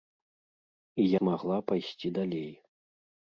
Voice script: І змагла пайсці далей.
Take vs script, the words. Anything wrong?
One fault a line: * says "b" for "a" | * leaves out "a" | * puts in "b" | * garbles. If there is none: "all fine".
all fine